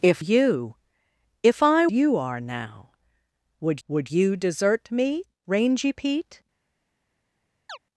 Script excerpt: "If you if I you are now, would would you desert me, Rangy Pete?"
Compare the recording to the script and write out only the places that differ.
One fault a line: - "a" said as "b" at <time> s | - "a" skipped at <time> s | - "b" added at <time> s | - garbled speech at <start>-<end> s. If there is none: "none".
none